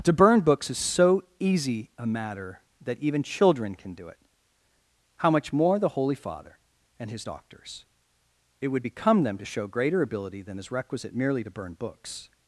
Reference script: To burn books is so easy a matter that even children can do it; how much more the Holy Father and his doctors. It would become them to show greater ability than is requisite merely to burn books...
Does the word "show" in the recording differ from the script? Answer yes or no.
no